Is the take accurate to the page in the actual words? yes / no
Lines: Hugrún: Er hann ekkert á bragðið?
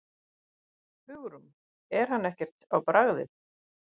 yes